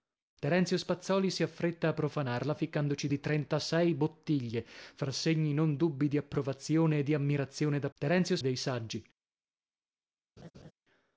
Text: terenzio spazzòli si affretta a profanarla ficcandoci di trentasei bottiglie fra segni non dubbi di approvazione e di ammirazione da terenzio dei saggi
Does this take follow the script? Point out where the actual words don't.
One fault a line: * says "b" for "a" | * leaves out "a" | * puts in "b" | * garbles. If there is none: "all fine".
all fine